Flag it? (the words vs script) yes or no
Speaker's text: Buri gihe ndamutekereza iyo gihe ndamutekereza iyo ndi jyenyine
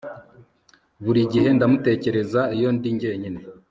yes